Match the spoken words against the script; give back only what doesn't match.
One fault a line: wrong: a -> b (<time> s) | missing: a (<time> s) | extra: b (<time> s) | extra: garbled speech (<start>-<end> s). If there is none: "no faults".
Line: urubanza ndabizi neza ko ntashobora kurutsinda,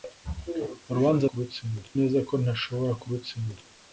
wrong: ndabizi -> kurutsinda (1.3 s)